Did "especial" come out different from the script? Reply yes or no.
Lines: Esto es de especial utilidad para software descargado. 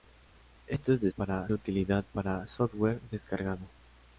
yes